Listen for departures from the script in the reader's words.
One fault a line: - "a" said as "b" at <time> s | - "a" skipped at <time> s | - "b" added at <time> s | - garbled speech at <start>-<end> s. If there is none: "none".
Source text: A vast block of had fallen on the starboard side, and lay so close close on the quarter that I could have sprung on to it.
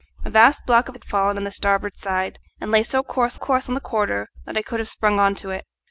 none